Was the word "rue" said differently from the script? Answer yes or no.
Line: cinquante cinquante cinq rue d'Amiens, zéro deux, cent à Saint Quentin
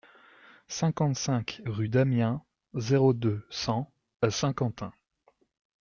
no